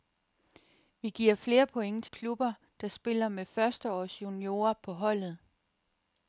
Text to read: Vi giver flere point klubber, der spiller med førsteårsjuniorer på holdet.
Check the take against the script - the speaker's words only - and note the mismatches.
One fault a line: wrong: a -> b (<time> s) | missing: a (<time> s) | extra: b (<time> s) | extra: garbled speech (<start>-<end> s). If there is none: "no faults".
no faults